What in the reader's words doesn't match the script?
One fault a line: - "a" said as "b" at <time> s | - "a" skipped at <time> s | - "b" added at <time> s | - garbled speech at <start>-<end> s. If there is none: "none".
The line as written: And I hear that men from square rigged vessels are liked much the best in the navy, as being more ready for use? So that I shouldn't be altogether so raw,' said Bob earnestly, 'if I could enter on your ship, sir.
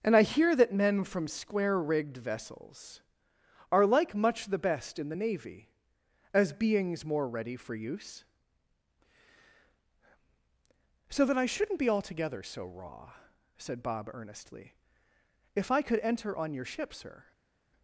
- "liked" said as "like" at 3.9 s
- "being" said as "beings" at 6.5 s